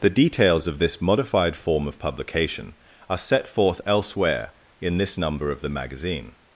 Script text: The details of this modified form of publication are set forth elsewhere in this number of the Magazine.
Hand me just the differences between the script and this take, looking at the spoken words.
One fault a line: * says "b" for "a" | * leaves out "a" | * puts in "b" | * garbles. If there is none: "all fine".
all fine